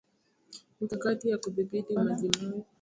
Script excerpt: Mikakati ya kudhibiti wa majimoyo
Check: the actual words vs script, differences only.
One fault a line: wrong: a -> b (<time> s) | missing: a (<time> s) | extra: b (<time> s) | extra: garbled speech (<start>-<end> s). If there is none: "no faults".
no faults